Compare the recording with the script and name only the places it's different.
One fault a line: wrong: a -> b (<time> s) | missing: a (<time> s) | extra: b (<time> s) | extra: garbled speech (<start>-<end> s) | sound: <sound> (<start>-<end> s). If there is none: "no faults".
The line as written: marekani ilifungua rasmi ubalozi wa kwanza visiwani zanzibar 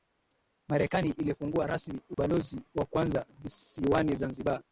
sound: dropout (2.1-2.2 s)